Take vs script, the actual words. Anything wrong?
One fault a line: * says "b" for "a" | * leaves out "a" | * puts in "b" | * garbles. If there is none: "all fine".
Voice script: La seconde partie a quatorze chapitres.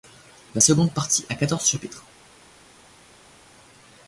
all fine